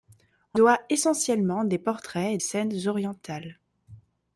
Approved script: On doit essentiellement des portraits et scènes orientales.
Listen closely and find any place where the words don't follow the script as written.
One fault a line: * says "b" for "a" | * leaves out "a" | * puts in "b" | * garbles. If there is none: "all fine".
all fine